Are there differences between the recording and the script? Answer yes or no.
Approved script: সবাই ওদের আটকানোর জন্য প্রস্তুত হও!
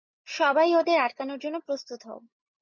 no